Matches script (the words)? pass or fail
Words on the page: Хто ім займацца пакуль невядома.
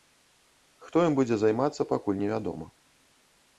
fail